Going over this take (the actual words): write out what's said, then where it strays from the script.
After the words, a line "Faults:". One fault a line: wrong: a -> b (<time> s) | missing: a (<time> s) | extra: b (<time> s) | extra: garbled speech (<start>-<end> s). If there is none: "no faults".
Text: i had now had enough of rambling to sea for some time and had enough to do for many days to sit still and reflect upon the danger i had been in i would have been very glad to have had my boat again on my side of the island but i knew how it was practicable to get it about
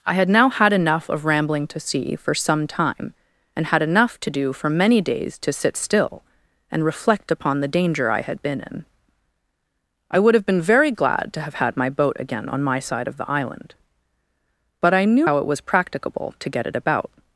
i had now had enough of rambling to sea for some time and had enough to do for many days to sit still and reflect upon the danger i had been in i would have been very glad to have had my boat again on my side of the island but i knew how it was practicable to get it about
Faults:
no faults